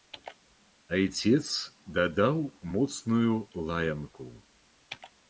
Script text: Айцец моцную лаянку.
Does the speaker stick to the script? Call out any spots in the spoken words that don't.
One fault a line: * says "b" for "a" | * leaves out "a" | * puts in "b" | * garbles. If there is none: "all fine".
* puts in "дадаў"